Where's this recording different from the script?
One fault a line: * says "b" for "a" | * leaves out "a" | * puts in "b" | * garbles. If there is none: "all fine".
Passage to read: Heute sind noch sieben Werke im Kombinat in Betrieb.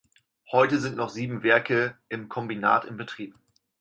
all fine